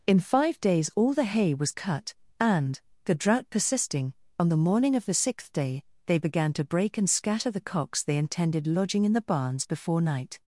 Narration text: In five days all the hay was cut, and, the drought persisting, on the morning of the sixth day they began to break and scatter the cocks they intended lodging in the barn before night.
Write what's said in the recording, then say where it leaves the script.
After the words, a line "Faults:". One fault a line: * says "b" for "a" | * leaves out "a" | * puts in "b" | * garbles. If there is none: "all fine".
In five days all the hay was cut, and, the drought persisting, on the morning of the sixth day they began to break and scatter the cocks they intended lodging in the barns before night.
Faults:
* says "barns" for "barn"